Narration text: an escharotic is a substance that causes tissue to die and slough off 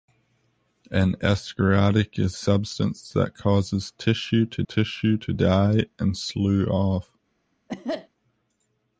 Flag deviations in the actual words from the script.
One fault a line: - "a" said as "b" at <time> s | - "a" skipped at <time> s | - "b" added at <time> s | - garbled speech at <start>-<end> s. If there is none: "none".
- "a" skipped at 2.4 s
- "tissue to" added at 4.7 s